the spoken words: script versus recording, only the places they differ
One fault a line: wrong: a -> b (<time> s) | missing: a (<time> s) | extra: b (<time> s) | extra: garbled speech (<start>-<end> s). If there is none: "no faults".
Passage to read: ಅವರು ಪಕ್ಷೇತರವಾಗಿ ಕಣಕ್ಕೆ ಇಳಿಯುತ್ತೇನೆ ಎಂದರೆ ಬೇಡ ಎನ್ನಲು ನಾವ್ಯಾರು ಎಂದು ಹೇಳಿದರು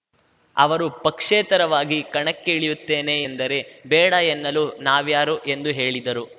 no faults